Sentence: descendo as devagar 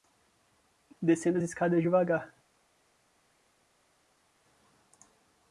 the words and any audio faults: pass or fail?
fail